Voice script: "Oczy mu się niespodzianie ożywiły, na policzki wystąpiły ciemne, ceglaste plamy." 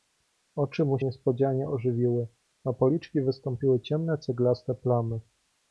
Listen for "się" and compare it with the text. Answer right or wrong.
wrong